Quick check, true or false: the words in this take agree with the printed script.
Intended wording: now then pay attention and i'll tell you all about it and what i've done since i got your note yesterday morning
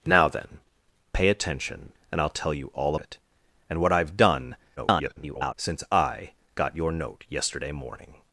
false